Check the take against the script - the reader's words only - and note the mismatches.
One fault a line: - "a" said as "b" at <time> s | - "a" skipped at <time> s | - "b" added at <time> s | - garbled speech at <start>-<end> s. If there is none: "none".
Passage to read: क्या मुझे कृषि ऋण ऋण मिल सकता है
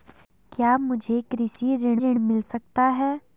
none